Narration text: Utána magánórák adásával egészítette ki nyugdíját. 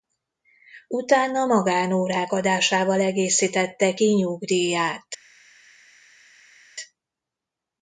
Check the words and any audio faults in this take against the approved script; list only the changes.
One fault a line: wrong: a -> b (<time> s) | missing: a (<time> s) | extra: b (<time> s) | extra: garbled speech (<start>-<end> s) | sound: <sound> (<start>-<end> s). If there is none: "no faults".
no faults